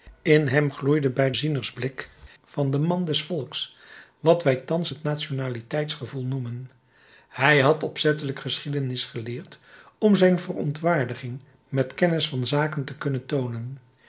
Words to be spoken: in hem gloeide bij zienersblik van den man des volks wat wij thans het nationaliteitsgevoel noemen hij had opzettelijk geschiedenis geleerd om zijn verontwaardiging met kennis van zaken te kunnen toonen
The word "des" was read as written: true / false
true